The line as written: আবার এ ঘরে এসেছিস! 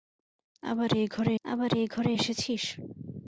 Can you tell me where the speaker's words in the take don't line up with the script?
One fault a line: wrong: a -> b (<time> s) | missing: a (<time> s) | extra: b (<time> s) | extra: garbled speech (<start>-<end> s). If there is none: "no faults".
extra: আবার এ ঘরে (1.4 s)